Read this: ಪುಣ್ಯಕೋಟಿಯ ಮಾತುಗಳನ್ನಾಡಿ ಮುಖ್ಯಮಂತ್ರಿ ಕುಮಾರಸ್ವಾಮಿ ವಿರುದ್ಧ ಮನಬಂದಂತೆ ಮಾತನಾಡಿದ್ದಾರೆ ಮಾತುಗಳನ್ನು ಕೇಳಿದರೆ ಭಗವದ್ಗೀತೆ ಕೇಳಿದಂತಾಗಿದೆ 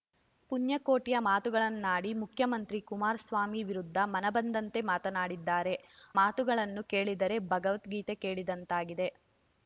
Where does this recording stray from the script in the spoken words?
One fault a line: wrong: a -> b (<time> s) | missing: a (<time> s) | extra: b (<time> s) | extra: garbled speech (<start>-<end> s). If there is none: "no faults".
no faults